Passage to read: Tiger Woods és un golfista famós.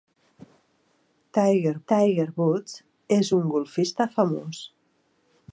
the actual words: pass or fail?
fail